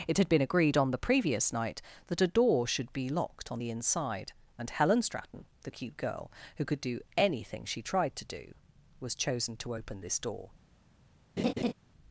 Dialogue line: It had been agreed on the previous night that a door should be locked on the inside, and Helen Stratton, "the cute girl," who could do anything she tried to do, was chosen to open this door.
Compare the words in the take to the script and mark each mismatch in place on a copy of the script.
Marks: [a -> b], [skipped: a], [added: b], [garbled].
It had been agreed on the previous night that a door should be locked on the inside, and Helen Stratton, "the cute girl," who could do anything she tried to do, was chosen to open this door.